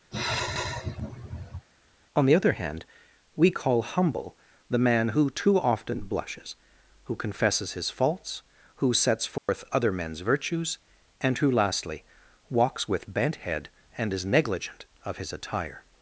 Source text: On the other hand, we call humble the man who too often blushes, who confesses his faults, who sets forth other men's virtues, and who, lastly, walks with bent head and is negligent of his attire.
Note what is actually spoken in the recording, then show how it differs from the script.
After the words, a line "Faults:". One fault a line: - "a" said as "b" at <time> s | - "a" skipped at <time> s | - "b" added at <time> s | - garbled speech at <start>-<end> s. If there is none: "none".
On the other hand, we call humble the man who too often blushes, who confesses his faults, who sets forth other men's virtues, and who, lastly, walks with bent head and is negligent of his attire.
Faults:
none